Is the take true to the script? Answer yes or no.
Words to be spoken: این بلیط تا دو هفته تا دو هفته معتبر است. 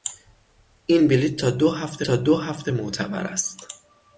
yes